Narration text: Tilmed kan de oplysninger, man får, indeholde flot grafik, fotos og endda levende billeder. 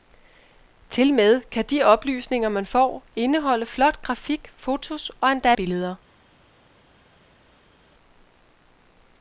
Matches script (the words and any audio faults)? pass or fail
fail